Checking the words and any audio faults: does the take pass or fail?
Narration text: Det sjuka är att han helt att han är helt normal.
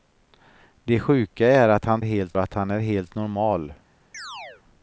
fail